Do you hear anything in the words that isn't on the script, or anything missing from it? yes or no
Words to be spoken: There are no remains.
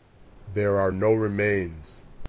no